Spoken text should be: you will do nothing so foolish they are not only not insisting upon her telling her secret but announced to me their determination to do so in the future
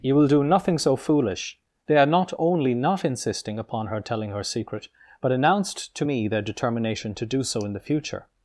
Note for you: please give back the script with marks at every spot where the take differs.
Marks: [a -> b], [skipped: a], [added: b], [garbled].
you will do nothing so foolish they are not only not insisting upon her telling her secret but announced to me their determination to do so in the future